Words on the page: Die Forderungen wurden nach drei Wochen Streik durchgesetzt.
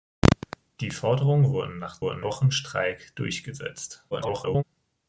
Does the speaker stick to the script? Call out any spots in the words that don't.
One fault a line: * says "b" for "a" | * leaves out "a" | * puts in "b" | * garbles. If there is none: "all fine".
* says "wurden" for "drei"
* garbles